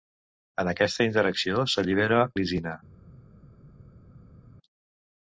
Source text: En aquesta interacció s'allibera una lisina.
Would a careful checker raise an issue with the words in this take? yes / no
yes